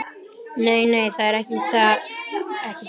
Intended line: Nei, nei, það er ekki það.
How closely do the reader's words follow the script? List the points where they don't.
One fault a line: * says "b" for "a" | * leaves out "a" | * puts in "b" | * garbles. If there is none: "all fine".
all fine